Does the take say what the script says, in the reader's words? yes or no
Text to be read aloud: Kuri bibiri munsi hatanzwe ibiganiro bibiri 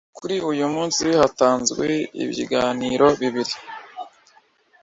no